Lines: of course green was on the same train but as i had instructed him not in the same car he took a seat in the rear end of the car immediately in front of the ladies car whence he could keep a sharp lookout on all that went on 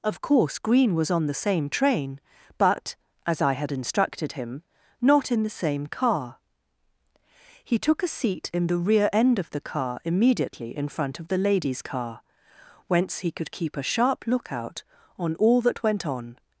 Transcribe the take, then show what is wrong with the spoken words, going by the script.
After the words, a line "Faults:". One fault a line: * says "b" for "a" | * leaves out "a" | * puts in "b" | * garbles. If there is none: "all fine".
of course green was on the same train but as i had instructed him not in the same car he took a seat in the rear end of the car immediately in front of the ladies car whence he could keep a sharp lookout on all that went on
Faults:
all fine